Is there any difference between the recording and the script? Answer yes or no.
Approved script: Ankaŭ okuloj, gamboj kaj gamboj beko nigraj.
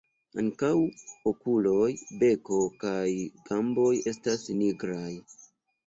yes